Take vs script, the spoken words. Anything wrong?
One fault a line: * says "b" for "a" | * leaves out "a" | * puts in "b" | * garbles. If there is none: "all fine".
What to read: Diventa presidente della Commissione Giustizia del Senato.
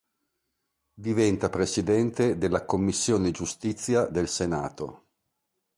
all fine